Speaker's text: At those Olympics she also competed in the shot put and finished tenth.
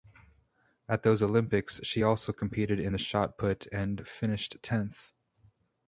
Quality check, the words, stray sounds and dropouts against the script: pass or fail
pass